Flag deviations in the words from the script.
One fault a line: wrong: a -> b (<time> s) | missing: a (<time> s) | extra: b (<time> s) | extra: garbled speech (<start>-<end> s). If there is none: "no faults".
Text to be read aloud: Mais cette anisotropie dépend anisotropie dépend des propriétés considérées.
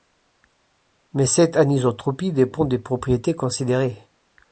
missing: anisotropie dépend (2.6 s)